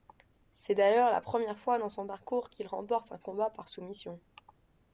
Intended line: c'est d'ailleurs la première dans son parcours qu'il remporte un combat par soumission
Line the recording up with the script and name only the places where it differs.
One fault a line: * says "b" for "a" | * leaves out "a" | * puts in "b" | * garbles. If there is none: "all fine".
* puts in "fois"